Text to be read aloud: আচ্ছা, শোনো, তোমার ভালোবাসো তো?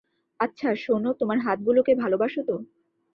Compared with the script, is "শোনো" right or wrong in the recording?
right